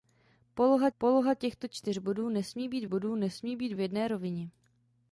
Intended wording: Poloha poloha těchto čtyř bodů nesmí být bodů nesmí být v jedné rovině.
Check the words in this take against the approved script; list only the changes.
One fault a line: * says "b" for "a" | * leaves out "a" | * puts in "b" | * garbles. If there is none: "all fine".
all fine